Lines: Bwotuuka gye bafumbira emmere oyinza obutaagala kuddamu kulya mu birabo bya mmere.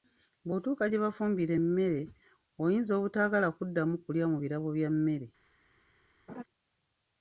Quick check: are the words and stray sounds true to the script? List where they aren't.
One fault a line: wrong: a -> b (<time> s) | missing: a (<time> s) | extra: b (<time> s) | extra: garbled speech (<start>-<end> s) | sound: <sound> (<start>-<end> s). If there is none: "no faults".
sound: laugh (6.3-6.4 s)